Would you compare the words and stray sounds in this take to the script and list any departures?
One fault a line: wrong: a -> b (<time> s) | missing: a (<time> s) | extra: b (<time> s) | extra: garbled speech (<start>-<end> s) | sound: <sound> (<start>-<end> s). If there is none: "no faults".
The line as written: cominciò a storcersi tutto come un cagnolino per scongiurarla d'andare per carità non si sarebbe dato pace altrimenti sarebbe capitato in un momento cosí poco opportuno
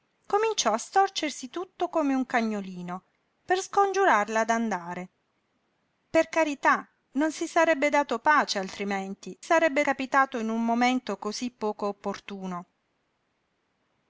no faults